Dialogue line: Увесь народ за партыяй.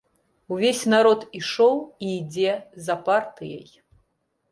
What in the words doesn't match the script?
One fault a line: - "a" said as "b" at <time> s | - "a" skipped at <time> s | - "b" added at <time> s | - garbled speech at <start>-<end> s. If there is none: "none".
- "ішоў і ідзе" added at 1.4 s